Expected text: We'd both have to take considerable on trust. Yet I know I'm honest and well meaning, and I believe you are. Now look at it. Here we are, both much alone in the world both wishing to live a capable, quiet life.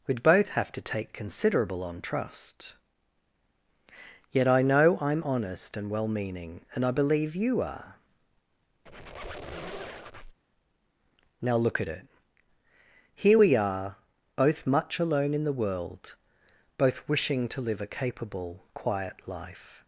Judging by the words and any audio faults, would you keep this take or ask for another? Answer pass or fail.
fail